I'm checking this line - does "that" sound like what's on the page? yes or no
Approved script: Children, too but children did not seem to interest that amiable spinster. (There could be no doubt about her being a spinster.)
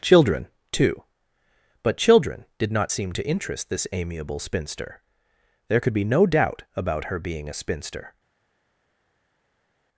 no